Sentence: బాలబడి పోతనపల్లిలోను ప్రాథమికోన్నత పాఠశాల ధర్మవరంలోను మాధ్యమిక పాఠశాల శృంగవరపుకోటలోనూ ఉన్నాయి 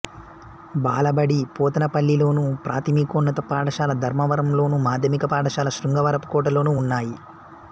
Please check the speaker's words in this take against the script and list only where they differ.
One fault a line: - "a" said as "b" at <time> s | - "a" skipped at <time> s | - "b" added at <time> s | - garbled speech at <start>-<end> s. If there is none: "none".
none